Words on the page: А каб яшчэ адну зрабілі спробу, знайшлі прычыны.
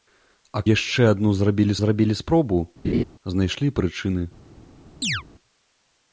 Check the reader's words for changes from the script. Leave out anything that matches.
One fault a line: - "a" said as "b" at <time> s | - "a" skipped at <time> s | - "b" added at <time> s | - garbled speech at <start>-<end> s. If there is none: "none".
- "каб" skipped at 0.6 s
- "зрабілі" added at 1.8 s